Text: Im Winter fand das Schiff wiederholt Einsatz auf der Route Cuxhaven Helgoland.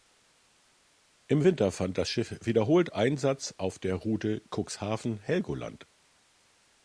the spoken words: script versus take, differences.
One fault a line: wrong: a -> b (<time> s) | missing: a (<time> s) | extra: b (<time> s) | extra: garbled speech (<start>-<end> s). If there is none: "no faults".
no faults